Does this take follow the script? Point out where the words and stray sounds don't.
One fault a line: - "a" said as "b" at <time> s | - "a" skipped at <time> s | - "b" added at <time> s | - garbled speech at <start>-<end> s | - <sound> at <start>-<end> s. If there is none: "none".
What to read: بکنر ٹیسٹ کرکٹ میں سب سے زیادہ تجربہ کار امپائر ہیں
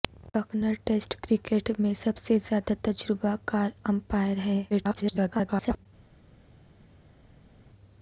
- garbled speech at 4.7-5.9 s